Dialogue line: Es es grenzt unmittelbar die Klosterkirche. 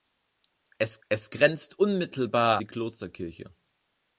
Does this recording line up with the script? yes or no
yes